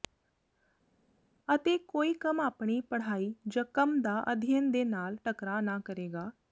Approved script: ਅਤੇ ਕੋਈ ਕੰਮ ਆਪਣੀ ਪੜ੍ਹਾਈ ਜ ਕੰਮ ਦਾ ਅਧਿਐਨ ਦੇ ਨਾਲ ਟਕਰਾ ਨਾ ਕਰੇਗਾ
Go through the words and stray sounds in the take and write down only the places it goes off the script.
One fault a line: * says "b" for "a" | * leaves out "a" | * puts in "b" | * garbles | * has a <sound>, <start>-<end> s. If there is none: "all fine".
all fine